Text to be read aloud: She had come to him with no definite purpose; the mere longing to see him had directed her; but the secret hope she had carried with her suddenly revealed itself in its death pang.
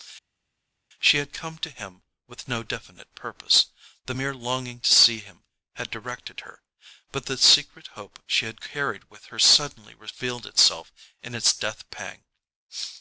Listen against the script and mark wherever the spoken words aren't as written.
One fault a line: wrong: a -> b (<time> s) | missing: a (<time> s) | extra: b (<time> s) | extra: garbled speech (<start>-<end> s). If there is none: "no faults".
no faults